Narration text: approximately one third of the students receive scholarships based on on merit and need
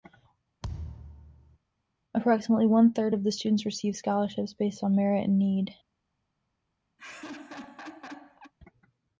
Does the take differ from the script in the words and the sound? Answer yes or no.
yes